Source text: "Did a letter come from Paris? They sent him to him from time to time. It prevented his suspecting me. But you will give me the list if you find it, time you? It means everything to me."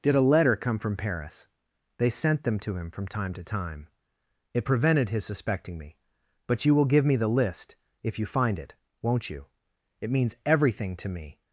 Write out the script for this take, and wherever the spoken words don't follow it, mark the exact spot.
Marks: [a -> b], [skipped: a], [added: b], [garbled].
"Did a letter come from Paris? They sent [him -> them] to him from time to time. It prevented his suspecting me. But you will give me the list if you find it, [time -> won't] you? It means everything to me."